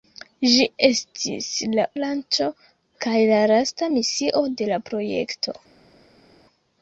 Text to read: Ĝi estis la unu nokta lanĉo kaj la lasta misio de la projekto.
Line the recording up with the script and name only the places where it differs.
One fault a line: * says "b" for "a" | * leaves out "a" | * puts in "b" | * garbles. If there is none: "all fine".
* leaves out "unu nokta"